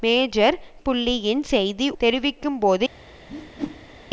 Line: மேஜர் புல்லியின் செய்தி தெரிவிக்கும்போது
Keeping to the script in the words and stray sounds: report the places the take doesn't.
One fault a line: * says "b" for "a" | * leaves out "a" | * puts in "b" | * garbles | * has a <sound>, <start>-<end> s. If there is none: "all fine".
* has a whoosh, 3.3-4.0 s